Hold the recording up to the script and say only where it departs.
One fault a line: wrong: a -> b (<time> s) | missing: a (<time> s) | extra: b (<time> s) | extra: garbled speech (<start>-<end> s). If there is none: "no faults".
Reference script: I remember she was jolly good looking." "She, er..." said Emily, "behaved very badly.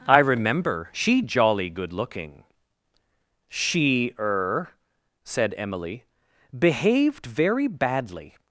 missing: was (1.2 s)